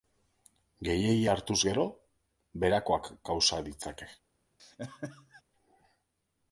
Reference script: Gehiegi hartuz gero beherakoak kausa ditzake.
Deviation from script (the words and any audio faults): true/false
true